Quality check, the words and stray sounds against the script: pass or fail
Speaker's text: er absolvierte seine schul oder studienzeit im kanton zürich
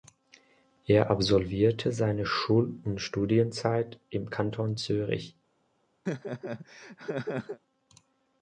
fail